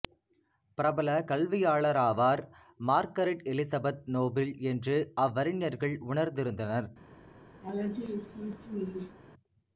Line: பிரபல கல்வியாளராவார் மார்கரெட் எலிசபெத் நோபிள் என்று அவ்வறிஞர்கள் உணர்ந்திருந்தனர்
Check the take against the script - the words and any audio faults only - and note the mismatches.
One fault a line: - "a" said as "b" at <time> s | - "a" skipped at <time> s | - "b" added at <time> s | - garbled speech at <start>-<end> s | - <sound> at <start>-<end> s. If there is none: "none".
- laugh at 7.6-9.2 s